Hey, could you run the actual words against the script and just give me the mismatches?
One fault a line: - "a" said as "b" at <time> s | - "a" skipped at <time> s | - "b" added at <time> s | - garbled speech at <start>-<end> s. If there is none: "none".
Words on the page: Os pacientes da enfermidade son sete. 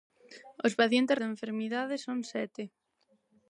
none